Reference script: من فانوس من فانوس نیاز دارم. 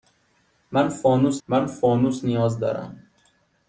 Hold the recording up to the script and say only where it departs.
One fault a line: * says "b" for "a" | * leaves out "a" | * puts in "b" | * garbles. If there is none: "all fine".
all fine